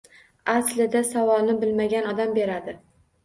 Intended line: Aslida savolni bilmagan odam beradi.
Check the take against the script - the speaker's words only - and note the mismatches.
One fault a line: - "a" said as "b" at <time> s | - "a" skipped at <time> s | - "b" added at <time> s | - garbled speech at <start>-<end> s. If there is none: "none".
none